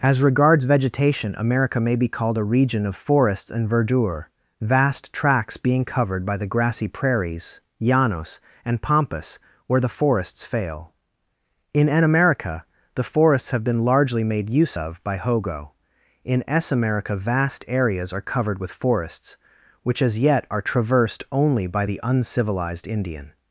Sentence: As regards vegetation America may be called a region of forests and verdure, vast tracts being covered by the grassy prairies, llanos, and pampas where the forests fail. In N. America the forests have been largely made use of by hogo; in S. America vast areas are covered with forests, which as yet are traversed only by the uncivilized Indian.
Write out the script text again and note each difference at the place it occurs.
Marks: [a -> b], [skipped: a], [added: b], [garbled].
As regards vegetation America may be called a region of forests and verdure, vast tracts being covered by the grassy prairies, llanos, and pampas where the forests fail. In N. America the forests have been largely made use of by hogo; in S. America vast areas are covered with forests, which as yet are traversed only by the uncivilized Indian.